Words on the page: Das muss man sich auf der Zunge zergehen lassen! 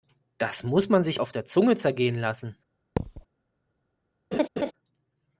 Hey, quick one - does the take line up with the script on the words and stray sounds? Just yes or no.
no